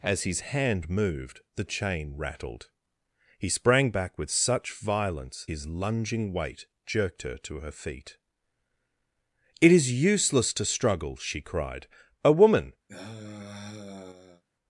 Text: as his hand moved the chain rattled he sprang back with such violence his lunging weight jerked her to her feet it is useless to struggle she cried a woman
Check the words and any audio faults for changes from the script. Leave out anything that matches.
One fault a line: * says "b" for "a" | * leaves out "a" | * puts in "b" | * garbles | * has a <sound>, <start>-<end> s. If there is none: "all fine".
* has a sigh, 12.9-14.4 s